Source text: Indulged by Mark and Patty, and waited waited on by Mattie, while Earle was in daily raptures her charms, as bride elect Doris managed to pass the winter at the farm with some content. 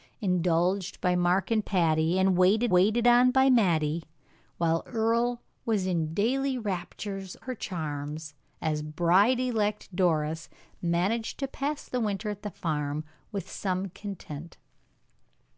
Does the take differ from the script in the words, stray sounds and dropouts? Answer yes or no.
no